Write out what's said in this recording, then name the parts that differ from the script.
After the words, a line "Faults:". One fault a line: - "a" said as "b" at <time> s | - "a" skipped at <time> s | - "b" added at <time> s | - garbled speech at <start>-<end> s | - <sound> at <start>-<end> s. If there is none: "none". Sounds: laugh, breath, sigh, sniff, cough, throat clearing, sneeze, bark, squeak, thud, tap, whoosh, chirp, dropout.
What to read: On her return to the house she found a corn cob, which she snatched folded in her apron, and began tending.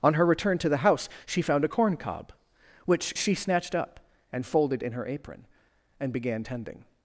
On her return to the house she found a corn cob, which she snatched up and folded in her apron, and began tending.
Faults:
- "up and" added at 3.7 s